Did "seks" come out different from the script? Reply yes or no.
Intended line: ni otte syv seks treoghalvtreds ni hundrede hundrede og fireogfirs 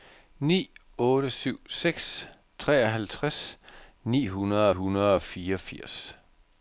no